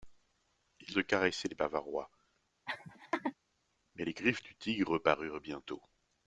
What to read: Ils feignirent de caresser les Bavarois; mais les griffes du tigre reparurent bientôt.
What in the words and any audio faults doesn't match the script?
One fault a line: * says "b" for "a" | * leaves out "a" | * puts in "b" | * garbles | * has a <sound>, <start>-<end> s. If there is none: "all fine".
* leaves out "feignirent"
* has a laugh, 2.7-3.3 s